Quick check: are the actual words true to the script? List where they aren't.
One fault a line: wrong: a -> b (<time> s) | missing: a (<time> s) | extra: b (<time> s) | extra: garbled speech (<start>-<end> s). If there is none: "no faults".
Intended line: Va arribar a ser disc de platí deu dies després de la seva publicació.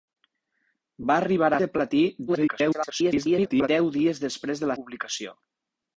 missing: ser disc (1.6 s)
extra: garbled speech (2.3-3.7 s)
missing: seva (4.8 s)